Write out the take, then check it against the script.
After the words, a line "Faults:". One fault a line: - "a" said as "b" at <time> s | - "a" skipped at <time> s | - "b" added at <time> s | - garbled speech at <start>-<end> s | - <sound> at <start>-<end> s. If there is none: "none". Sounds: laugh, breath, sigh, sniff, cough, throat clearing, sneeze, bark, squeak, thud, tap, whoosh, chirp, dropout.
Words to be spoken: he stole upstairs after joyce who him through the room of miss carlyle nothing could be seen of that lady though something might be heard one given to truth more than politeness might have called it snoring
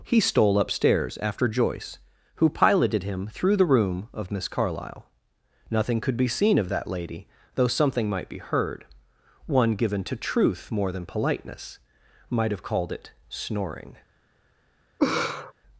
he stole upstairs after joyce who piloted him through the room of miss carlyle nothing could be seen of that lady though something might be heard one given to truth more than politeness might have called it snoring
Faults:
- "piloted" added at 2.5 s
- laugh at 15.0-15.5 s